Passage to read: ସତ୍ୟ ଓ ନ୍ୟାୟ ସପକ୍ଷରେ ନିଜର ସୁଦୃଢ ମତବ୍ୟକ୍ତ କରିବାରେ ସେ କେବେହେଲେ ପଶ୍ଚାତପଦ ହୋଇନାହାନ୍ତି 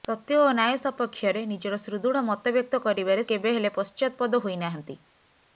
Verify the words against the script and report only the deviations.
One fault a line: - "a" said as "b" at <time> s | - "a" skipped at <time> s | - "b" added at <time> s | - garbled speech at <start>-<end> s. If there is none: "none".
- "ସେ" skipped at 3.3 s